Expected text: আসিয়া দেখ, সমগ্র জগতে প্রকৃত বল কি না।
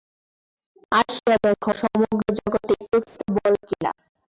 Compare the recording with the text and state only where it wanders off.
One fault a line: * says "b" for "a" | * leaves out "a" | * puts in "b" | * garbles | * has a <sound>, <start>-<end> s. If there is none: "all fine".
* has a dropout, 3.1-3.2 s